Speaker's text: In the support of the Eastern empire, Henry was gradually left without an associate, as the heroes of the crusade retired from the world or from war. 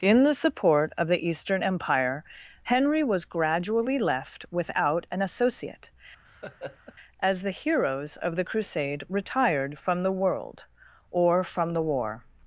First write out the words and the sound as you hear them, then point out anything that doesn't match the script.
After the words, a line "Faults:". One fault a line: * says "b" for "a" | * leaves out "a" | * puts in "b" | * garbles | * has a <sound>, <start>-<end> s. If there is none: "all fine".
In the support of the Eastern empire, Henry was gradually left without an associate, as the heroes of the crusade retired from the world or from the war.
Faults:
* has a laugh, 6.2-6.9 s
* puts in "the"